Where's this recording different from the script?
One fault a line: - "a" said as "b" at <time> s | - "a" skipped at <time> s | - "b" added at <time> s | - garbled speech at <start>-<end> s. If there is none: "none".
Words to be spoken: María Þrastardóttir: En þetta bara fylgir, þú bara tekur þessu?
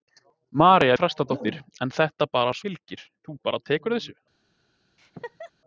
none